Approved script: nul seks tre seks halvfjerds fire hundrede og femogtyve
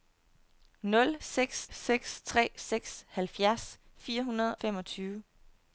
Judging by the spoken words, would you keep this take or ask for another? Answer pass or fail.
fail